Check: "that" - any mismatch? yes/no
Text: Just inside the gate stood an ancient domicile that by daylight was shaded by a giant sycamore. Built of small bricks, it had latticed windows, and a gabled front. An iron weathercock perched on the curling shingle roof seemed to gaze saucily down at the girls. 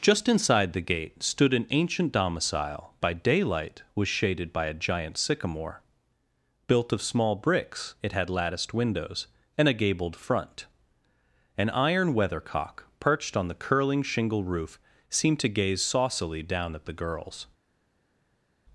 yes